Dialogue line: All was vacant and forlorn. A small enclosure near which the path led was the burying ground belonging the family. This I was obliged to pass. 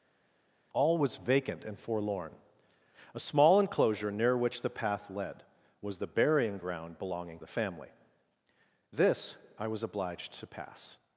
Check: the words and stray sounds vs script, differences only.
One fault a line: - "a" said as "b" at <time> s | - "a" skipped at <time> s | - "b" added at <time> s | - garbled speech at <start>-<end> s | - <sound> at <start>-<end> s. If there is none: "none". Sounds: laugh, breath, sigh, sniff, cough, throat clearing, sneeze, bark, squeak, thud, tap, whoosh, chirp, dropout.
none